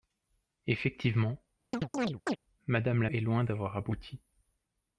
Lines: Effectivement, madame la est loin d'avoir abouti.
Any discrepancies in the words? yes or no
no